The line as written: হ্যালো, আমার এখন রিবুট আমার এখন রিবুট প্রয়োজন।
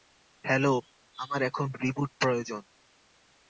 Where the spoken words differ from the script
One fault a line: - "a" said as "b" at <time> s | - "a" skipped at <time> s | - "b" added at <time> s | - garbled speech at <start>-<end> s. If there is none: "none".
- "আমার এখন রিবুট" skipped at 2.1 s